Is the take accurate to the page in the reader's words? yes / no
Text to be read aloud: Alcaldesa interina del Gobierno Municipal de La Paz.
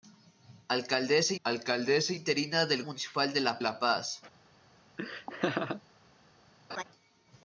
no